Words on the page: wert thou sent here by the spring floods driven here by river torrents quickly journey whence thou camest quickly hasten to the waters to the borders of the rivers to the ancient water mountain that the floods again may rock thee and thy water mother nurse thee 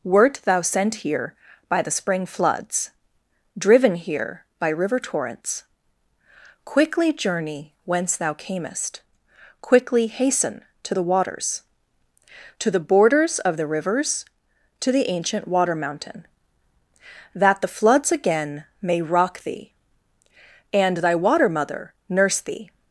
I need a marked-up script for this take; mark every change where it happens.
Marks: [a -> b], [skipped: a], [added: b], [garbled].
wert thou sent here by the spring floods driven here by river torrents quickly journey whence thou camest quickly hasten to the waters to the borders of the rivers to the ancient water mountain that the floods again may rock thee and thy water mother nurse thee